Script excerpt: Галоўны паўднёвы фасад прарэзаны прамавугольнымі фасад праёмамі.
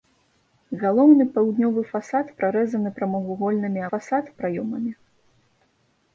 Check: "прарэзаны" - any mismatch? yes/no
no